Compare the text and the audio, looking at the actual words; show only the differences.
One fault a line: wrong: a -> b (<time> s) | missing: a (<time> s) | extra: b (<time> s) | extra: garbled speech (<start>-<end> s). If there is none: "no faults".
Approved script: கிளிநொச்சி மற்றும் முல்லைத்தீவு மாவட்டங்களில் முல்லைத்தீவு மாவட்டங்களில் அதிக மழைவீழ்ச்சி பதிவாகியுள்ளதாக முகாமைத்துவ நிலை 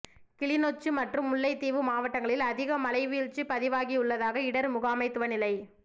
missing: முல்லைத்தீவு மாவட்டங்களில் (2.4 s)
extra: இடர் (4.5 s)